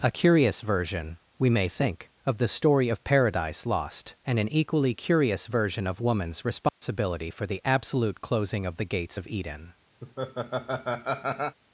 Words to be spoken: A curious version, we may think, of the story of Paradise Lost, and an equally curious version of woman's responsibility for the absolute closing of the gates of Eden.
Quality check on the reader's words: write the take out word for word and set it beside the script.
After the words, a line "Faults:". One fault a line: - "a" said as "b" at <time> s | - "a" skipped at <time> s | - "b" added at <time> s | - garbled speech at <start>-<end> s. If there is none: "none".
A curious version, we may think, of the story of Paradise Lost, and an equally curious version of woman's responsibility for the absolute closing of the gates of Eden.
Faults:
none